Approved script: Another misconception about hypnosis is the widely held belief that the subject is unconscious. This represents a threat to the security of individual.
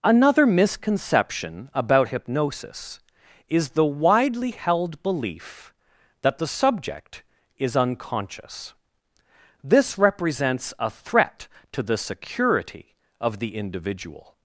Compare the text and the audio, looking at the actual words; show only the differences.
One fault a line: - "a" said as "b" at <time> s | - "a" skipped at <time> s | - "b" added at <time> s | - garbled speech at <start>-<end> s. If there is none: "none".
- "the" added at 13.4 s